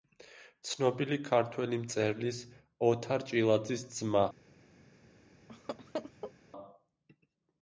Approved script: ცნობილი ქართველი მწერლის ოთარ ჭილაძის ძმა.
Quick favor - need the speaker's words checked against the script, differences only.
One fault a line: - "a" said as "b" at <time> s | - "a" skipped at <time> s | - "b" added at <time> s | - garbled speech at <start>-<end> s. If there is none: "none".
none